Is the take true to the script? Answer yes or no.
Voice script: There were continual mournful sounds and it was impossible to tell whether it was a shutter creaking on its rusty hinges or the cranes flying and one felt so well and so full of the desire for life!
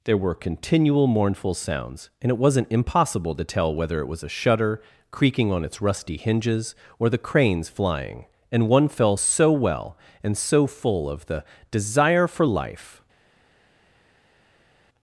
no